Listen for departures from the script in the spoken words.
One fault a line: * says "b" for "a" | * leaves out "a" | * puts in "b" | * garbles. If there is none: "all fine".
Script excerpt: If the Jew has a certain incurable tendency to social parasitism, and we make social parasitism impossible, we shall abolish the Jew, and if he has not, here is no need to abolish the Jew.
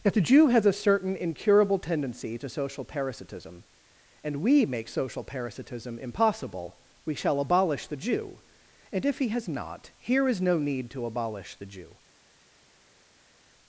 all fine